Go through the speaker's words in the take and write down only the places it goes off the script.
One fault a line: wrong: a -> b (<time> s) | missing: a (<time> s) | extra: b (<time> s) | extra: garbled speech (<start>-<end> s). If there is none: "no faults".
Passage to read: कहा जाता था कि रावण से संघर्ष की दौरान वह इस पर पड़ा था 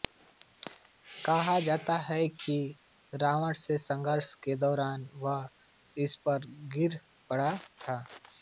wrong: था -> है (2.0 s)
wrong: की -> के (4.4 s)
extra: गिर (6.8 s)